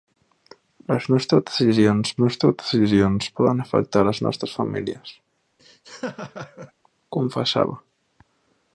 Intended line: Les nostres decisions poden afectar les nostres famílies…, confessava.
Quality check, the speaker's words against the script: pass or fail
fail